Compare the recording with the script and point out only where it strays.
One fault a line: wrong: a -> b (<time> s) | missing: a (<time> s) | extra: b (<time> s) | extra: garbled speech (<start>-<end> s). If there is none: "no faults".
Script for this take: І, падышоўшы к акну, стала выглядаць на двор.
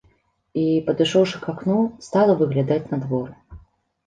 no faults